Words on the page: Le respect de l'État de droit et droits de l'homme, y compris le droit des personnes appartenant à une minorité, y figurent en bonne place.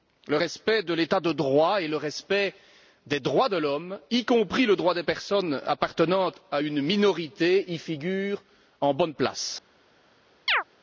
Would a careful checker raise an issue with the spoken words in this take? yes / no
yes